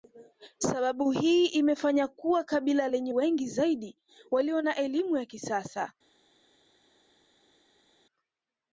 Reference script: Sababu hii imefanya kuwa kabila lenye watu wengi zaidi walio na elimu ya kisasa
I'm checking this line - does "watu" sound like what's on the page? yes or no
no